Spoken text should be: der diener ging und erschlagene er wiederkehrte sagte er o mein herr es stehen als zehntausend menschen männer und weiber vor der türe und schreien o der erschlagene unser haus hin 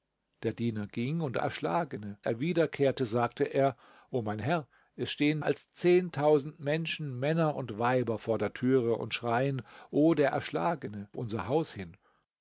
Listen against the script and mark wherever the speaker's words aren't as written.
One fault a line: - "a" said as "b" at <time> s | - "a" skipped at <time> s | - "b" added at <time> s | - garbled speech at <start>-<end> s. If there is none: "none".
none